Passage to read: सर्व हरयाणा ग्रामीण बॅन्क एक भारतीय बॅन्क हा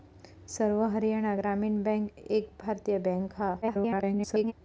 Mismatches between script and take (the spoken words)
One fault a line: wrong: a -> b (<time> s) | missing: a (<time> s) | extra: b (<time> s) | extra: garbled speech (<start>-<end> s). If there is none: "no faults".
extra: garbled speech (3.6-4.5 s)